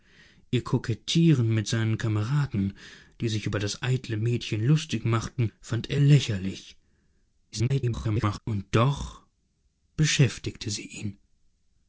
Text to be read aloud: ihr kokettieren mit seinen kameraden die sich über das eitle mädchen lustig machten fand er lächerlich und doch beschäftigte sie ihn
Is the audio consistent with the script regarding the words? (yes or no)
no